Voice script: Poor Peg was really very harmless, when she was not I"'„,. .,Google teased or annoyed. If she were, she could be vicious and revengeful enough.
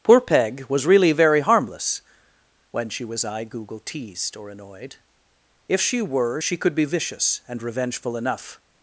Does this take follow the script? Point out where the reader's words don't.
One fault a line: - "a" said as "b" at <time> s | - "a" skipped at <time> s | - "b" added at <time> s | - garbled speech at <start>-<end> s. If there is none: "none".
- "not" skipped at 3.2 s